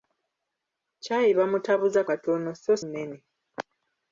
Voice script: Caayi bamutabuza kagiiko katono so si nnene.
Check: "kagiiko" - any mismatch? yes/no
yes